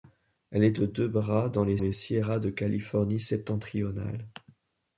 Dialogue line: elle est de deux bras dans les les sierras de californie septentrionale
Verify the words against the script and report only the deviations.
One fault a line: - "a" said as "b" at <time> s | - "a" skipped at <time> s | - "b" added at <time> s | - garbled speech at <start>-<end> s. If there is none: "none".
none